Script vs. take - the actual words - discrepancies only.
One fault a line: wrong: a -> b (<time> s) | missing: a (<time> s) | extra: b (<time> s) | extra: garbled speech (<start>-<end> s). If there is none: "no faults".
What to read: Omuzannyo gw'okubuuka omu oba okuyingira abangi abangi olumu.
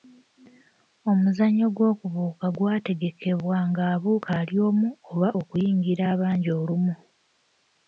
extra: gwategekebwa ng'abuuka ali (2.6 s)
missing: abangi (6.5 s)